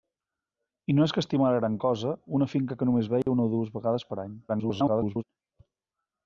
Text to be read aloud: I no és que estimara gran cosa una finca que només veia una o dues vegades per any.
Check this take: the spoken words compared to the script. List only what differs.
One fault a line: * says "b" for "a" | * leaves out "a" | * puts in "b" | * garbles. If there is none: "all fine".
* garbles